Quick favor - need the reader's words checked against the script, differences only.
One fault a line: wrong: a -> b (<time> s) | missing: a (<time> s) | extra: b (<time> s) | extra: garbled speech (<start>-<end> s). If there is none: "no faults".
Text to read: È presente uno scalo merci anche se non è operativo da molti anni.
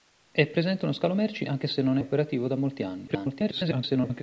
missing: è (2.0 s)
extra: garbled speech (3.1-4.2 s)